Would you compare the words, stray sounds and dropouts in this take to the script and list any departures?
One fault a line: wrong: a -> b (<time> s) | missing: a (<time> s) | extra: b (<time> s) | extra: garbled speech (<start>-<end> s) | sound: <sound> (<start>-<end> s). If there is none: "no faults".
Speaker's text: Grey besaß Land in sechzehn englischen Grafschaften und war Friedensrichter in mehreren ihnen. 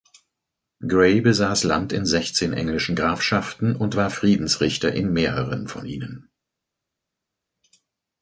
extra: von (5.7 s)